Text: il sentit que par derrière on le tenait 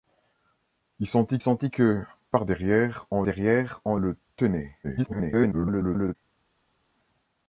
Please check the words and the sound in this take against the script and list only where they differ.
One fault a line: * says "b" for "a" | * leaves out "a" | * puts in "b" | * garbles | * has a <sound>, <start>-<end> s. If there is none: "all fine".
* puts in "sentit"
* puts in "derrière on"
* garbles